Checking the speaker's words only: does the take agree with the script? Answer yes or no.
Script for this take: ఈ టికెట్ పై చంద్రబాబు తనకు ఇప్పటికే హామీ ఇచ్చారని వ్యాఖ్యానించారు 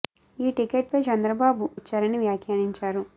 no